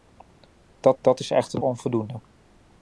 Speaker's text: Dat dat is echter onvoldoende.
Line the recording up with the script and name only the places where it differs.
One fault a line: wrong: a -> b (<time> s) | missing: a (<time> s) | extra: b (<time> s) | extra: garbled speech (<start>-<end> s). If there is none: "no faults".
no faults